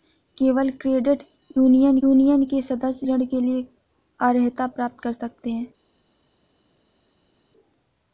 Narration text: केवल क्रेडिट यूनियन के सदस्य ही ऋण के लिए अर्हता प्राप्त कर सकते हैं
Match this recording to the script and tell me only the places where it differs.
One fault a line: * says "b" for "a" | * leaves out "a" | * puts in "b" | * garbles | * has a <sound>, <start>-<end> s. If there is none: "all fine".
* puts in "यूनियन"
* leaves out "ही"